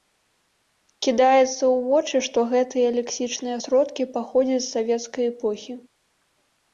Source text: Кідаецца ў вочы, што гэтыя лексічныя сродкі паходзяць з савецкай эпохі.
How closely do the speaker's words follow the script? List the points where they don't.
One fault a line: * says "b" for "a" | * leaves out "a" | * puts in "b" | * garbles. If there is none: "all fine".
all fine